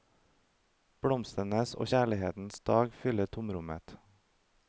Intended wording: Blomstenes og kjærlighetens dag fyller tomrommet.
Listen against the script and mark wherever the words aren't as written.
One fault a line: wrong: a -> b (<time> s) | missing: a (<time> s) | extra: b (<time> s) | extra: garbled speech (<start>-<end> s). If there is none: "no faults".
no faults